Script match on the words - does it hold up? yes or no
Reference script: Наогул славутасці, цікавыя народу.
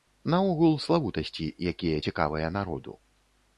no